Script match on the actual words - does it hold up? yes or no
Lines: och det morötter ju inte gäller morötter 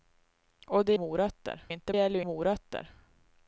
yes